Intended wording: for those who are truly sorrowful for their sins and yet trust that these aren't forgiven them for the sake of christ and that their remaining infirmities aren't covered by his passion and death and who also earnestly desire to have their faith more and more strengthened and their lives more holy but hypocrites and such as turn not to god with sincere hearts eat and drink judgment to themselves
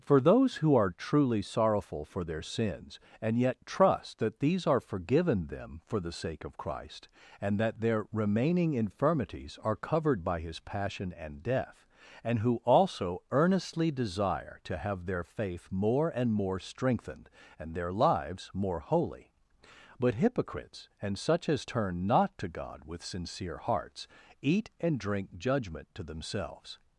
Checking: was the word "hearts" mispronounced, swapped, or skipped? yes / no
no